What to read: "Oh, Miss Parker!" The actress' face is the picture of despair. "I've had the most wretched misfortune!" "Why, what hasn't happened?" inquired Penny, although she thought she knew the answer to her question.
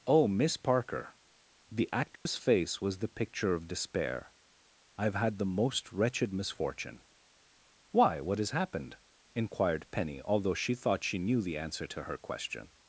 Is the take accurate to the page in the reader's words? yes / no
no